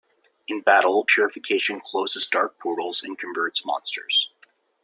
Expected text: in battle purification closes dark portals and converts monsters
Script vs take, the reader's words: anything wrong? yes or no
no